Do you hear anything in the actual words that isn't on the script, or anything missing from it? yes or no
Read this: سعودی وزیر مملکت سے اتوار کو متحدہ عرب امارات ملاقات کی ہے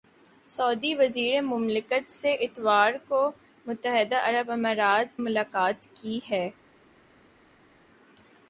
no